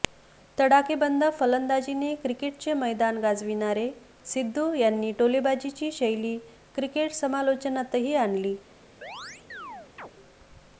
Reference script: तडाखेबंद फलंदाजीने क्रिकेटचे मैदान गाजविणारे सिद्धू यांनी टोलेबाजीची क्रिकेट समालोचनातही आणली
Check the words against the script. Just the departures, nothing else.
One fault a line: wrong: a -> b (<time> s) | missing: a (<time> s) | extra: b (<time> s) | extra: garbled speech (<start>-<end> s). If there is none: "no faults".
extra: शैली (5.9 s)